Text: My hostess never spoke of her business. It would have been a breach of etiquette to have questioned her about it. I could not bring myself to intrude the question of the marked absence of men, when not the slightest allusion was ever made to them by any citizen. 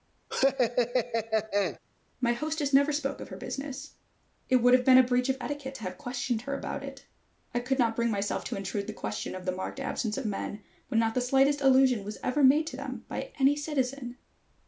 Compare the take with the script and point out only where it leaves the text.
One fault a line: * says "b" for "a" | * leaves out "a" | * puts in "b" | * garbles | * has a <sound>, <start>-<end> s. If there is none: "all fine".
* has a laugh, 0.3-1.8 s